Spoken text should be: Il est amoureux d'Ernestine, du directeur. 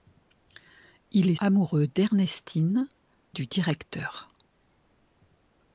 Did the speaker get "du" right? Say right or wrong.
right